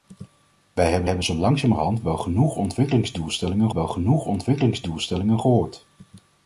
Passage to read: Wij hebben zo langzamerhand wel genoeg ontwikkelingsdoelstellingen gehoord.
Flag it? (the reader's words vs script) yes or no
yes